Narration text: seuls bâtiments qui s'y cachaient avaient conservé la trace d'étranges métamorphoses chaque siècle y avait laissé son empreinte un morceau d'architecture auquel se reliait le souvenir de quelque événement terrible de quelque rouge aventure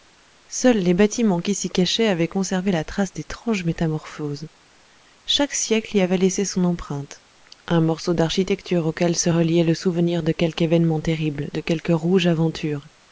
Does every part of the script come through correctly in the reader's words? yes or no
no